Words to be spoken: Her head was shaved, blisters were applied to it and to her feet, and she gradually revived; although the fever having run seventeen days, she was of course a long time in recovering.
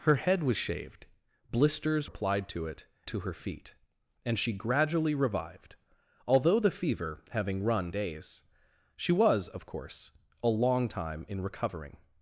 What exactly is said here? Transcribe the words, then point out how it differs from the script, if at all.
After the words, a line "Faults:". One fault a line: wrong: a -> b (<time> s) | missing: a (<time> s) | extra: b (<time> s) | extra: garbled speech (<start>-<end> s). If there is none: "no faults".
Her head was shaved, blisters applied to it to her feet, and she gradually revived; although the fever having run days, she was of course a long time in recovering.
Faults:
missing: were (2.1 s)
missing: and (2.9 s)
missing: seventeen (7.9 s)